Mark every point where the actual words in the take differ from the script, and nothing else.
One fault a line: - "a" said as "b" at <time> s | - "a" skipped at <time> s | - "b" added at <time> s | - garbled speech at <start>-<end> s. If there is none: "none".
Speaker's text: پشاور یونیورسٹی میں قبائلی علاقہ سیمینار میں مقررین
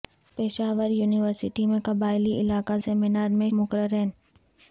none